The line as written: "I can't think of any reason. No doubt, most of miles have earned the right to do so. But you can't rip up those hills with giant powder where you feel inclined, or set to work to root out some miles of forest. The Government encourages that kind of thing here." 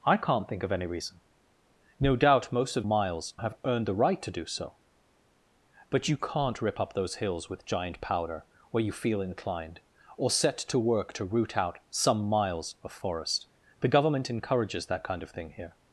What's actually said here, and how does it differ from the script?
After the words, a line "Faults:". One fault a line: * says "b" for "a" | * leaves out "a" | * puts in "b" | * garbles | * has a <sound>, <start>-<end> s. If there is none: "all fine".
"I can't think of any reason. No doubt, most of miles have earned the right to do so. But you can't rip up those hills with giant powder where you feel inclined, or set to work to root out some miles of forest. The Government encourages that kind of thing here."
Faults:
all fine